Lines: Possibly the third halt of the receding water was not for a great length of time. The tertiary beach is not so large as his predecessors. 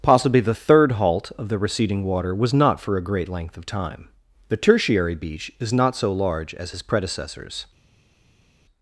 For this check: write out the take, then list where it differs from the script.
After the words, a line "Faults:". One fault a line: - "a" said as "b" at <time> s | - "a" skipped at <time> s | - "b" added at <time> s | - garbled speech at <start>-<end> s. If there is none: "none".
Possibly the third halt of the receding water was not for a great length of time. The tertiary beach is not so large as his predecessors.
Faults:
none